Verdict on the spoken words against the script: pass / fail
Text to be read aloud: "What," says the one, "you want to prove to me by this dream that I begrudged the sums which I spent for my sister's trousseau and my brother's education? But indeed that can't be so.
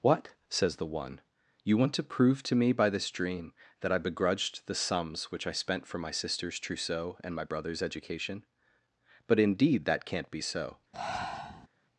pass